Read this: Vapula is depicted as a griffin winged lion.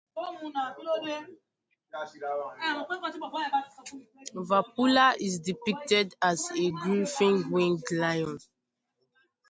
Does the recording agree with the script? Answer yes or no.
yes